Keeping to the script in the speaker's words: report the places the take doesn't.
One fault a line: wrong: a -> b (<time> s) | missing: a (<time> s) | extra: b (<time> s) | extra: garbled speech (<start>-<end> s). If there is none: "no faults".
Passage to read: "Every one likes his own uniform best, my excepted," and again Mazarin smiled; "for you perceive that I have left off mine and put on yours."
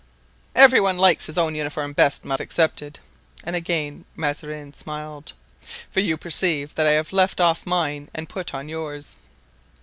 no faults